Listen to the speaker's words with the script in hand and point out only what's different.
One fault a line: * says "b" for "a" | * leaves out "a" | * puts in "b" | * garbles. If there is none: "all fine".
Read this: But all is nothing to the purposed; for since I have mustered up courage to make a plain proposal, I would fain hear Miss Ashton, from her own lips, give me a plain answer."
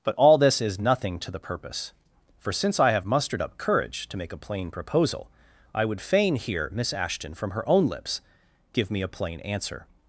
* puts in "this"
* says "purpose" for "purposed"